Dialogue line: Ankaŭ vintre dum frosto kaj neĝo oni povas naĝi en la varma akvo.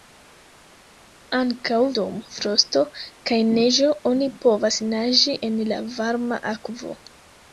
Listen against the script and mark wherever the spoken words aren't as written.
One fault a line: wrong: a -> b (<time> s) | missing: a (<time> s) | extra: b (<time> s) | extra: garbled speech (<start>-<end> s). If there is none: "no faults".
missing: vintre (1.8 s)